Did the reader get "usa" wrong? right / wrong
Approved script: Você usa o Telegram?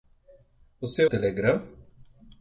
wrong